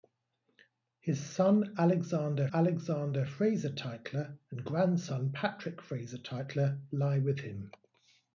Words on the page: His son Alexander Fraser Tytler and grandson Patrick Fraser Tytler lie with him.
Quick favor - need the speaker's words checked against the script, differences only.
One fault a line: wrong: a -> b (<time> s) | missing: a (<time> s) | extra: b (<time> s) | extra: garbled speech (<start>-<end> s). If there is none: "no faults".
extra: Alexander (2.5 s)